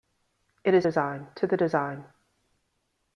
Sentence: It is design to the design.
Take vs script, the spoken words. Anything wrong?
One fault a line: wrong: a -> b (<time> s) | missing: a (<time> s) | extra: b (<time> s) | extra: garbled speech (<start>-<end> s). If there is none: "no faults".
no faults